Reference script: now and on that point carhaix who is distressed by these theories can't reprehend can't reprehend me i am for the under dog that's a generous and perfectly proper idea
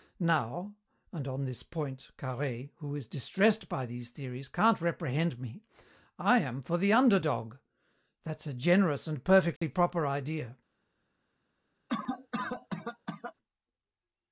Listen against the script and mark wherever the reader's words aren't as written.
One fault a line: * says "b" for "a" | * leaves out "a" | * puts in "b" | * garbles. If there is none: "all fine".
* says "this" for "that"
* leaves out "can't reprehend"